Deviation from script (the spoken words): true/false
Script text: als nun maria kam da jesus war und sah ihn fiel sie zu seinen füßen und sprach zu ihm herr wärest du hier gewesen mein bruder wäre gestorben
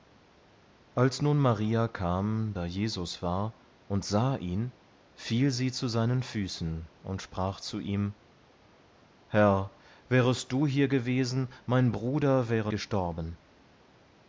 false